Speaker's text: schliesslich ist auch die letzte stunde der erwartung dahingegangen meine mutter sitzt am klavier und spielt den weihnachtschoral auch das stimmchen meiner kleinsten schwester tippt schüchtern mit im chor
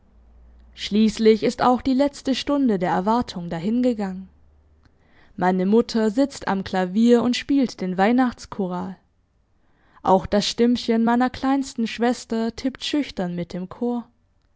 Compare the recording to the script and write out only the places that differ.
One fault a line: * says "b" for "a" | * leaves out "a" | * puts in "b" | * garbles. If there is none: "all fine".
all fine